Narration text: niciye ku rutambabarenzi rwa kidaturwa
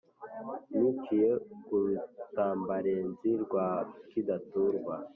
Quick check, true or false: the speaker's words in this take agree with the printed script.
true